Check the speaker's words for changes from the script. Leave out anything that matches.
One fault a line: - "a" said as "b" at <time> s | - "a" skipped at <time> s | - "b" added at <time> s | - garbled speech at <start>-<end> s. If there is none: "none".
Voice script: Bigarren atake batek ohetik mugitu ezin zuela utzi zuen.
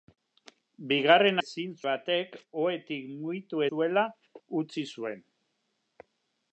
- "atake" said as "ezin" at 1.4 s
- "ezin" skipped at 3.6 s